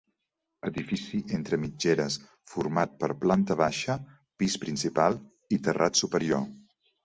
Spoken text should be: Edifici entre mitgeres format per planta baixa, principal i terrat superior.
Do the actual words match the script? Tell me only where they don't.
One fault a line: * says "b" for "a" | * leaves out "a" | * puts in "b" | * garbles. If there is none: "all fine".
* puts in "pis"